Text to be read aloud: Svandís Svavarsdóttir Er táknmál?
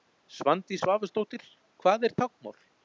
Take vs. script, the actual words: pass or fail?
fail